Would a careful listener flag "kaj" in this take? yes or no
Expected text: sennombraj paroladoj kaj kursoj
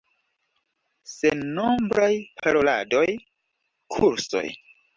yes